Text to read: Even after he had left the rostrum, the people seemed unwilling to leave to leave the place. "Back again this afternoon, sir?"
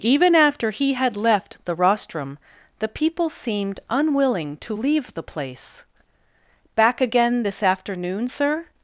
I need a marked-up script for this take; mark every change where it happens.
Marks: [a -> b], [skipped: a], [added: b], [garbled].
Even after he had left the rostrum, the people seemed unwilling to leave [skipped: to leave] the place. "Back again this afternoon, sir?"